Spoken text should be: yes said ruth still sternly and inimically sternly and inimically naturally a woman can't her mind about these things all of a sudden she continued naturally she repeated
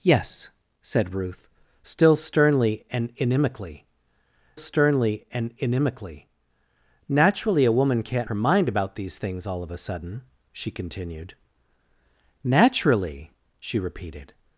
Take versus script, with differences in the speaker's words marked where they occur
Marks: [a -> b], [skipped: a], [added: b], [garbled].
yes said ruth still sternly and inimically sternly and inimically naturally a woman can't her mind about these things all of a sudden she continued naturally she repeated